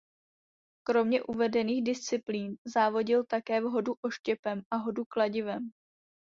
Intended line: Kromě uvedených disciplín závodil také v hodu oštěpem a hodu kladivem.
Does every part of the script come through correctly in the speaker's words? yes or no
yes